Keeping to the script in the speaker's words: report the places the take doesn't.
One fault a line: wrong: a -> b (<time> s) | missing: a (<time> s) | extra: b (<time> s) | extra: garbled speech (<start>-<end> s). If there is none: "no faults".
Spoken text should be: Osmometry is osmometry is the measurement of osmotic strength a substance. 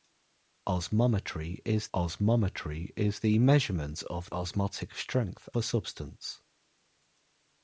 no faults